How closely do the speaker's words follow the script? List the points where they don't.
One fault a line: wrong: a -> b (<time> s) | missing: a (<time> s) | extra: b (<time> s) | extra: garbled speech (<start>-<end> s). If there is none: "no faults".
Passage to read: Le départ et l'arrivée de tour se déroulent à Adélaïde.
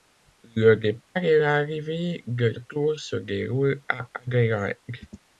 no faults